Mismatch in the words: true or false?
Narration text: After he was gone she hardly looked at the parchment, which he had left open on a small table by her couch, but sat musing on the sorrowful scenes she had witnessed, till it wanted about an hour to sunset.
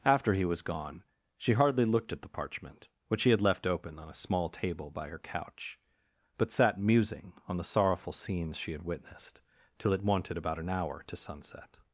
false